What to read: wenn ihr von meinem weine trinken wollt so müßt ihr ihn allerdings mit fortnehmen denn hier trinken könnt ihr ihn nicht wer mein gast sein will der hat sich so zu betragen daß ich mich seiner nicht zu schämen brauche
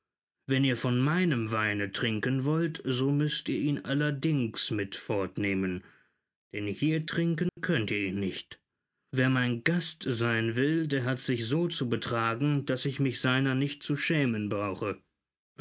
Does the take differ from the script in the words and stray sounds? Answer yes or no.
yes